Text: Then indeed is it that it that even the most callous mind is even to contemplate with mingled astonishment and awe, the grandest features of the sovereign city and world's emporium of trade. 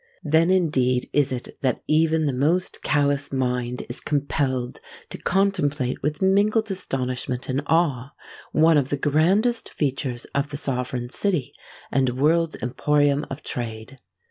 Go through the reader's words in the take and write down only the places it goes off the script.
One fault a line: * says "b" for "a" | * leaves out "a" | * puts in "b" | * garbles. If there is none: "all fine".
* leaves out "it that"
* says "compelled" for "even"
* puts in "one of"